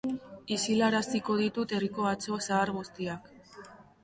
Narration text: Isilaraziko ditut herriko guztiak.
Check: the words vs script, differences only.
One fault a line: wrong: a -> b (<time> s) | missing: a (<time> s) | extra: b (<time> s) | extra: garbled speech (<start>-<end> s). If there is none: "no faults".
extra: atso zahar (2.1 s)